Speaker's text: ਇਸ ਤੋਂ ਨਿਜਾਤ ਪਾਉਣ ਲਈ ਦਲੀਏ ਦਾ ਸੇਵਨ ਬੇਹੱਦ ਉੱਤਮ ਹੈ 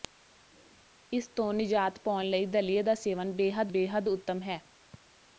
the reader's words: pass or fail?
fail